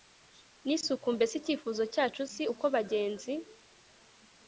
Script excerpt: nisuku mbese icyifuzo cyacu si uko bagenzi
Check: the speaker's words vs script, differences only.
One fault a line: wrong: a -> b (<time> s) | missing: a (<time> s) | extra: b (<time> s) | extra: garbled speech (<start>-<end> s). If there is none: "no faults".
no faults